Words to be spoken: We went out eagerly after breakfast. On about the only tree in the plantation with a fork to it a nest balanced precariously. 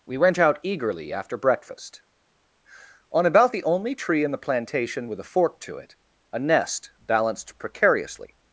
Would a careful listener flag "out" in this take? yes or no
no